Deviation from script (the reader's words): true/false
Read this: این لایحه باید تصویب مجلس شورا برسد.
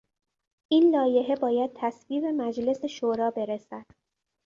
false